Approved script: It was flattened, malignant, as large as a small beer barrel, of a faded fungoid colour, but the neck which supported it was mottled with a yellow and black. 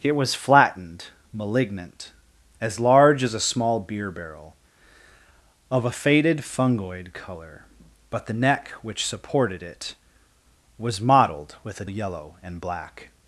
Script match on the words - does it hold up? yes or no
yes